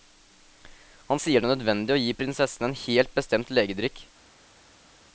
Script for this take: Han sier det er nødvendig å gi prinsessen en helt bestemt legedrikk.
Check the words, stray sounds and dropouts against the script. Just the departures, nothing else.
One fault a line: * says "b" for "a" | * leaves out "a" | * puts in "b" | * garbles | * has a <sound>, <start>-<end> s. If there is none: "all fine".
all fine